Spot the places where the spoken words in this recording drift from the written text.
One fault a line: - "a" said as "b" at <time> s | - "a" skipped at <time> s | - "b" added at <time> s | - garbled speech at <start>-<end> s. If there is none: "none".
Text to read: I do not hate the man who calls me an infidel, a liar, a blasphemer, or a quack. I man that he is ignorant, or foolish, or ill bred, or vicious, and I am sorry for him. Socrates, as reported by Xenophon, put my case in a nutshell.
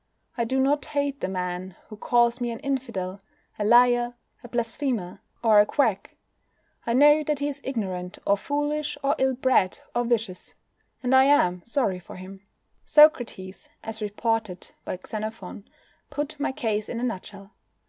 - "man" said as "know" at 6.9 s